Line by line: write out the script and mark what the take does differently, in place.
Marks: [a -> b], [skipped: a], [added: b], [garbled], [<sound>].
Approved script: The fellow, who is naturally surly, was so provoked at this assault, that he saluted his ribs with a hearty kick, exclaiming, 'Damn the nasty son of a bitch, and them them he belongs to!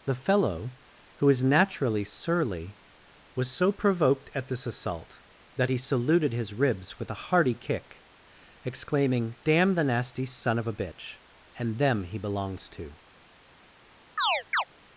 The fellow, who is naturally surly, was so provoked at this assault, that he saluted his ribs with a hearty kick, exclaiming, 'Damn the nasty son of a bitch, and them [skipped: them] he belongs to! [chirp]